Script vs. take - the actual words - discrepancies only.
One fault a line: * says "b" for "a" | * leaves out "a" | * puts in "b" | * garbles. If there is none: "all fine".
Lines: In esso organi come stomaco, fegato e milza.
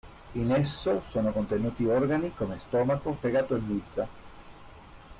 * puts in "sono contenuti"